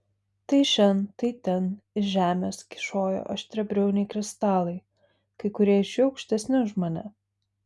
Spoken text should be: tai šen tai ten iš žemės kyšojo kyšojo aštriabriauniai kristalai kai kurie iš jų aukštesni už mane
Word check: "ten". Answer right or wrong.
right